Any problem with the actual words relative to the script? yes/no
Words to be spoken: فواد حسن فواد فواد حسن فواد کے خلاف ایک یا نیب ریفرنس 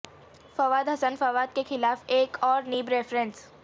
yes